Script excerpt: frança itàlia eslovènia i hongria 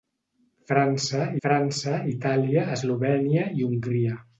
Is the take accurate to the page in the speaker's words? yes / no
no